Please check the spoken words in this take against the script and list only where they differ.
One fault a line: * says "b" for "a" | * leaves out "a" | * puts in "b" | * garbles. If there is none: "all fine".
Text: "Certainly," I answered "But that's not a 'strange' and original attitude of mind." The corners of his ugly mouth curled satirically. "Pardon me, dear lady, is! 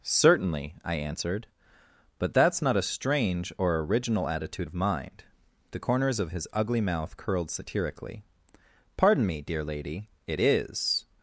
* says "or" for "and"
* puts in "it"